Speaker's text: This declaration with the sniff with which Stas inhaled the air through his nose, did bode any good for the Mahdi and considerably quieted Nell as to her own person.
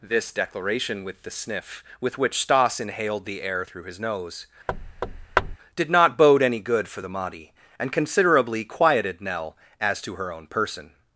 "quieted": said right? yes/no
yes